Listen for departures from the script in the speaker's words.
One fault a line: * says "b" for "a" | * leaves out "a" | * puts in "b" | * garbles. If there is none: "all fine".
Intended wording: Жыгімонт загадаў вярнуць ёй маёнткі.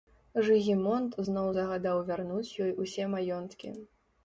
* puts in "зноў"
* puts in "усе"